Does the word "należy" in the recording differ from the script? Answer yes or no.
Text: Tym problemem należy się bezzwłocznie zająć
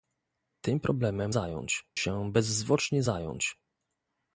yes